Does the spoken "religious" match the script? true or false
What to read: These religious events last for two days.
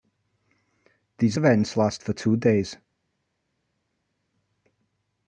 false